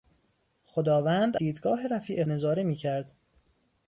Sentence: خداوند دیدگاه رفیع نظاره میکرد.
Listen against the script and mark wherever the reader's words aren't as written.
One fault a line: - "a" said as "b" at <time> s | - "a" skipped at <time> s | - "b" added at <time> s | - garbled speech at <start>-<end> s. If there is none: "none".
none